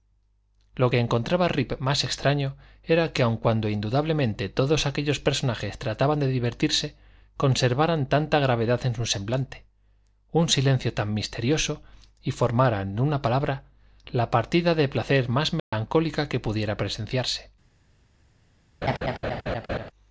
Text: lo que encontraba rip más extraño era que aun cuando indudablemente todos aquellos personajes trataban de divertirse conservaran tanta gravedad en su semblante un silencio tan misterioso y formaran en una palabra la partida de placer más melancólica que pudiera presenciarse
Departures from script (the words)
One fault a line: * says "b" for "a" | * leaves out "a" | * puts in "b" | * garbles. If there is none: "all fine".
all fine